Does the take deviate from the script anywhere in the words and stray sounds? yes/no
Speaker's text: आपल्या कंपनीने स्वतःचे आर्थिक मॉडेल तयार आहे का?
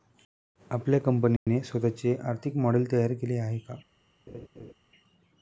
yes